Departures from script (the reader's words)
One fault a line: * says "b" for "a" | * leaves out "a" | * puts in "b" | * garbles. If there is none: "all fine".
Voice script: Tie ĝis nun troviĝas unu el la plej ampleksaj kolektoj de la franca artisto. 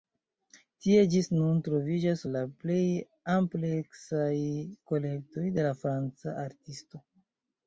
* leaves out "unu"